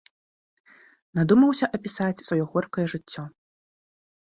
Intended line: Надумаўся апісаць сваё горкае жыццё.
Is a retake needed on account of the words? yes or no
no